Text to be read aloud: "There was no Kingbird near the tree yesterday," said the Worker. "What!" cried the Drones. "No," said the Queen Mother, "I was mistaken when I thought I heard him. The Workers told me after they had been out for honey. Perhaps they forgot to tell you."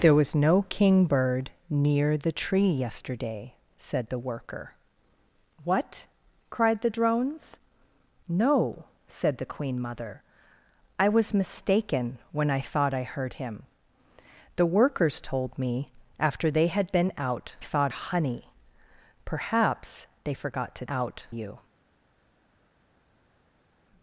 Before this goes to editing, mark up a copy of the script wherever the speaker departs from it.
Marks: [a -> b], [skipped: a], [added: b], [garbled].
"There was no Kingbird near the tree yesterday," said the Worker. "What!" cried the Drones. "No," said the Queen Mother, "I was mistaken when I thought I heard him. The Workers told me after they had been out [for -> thought] honey. Perhaps they forgot to [tell -> out] you."